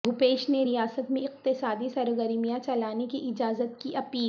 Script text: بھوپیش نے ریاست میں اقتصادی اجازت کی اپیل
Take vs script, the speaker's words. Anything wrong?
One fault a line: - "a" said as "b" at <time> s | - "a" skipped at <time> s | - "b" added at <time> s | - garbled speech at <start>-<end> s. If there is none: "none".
- "سرگرمیاں چلانے کی" added at 1.9 s